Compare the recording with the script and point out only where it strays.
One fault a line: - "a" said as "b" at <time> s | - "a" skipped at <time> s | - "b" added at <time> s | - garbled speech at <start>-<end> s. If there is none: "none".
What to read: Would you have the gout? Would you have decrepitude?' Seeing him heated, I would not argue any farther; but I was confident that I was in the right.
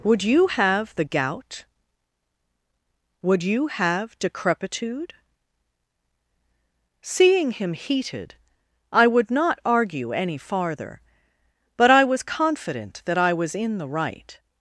none